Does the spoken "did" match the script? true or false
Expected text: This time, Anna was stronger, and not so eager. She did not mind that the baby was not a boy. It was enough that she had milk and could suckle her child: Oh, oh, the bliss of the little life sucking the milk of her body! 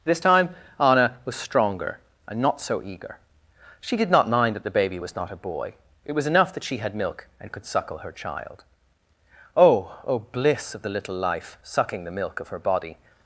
true